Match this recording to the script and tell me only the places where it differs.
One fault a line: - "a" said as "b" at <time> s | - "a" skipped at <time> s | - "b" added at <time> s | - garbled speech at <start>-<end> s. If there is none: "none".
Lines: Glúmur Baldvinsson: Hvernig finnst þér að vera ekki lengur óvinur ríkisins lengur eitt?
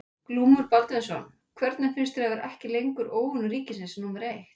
- "lengur" said as "númer" at 4.0 s